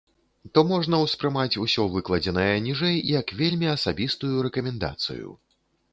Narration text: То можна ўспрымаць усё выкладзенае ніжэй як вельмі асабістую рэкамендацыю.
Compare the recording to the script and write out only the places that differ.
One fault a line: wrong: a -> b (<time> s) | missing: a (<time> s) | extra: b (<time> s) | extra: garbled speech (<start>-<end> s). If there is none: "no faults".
no faults